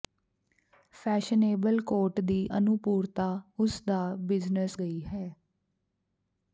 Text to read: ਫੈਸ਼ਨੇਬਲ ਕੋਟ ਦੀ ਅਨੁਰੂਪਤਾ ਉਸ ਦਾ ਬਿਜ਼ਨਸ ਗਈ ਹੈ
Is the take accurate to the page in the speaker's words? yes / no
yes